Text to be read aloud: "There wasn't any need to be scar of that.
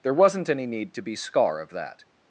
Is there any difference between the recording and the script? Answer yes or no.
no